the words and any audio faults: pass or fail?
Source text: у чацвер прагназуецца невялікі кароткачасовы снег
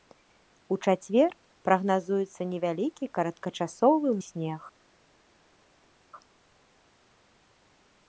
pass